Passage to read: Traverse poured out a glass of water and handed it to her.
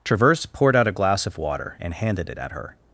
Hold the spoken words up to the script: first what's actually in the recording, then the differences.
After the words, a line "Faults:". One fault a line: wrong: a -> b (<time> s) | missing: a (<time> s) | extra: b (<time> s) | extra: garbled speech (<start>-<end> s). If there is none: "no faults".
Traverse poured out a glass of water and handed it at her.
Faults:
wrong: to -> at (2.4 s)